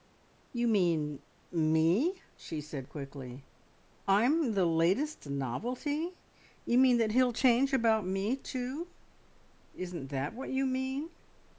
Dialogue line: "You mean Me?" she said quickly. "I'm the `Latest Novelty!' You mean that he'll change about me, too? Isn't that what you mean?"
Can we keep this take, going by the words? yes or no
yes